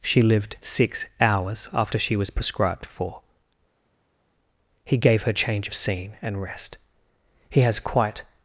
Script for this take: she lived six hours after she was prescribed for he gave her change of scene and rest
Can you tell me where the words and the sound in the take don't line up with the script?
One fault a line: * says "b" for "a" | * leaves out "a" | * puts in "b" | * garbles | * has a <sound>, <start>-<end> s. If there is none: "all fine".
* puts in "he has quite"